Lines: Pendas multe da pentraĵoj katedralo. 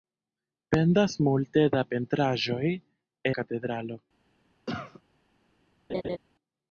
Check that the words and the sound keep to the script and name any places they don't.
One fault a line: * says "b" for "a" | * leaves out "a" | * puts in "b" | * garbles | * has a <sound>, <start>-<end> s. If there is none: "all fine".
* has a cough, 4.7-5.0 s
* has a laugh, 5.9-6.2 s